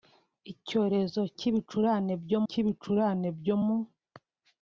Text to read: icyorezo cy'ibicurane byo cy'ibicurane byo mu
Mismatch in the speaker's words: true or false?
false